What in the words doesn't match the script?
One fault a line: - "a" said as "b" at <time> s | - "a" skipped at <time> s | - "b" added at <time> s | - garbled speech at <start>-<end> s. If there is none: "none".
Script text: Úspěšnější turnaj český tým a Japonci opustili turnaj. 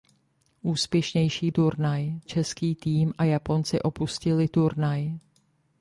none